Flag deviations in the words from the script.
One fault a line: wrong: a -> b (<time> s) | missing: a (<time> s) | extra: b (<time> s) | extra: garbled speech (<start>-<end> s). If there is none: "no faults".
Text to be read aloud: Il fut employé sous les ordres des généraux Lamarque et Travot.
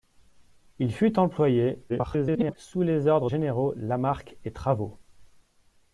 extra: garbled speech (1.9-2.6 s)
missing: des (3.3 s)